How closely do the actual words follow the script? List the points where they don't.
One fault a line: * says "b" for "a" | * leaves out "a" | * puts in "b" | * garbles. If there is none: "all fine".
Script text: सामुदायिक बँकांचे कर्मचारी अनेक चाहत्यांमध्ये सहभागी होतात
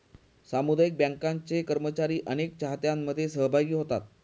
all fine